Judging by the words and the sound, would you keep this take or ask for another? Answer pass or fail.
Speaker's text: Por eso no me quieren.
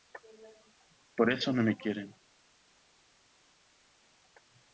pass